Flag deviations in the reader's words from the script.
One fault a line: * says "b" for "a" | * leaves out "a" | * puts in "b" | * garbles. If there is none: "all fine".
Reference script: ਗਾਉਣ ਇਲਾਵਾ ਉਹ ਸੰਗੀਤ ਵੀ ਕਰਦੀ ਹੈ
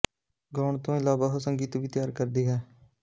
* puts in "ਤੋਂ"
* puts in "ਤਿਆਰ"